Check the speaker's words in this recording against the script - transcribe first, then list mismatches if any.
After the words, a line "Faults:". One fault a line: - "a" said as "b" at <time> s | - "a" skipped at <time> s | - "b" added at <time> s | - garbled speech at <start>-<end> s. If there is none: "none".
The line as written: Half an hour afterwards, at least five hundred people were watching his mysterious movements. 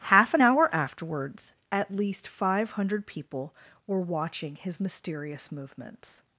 Half an hour afterwards, at least five hundred people were watching his mysterious movements.
Faults:
none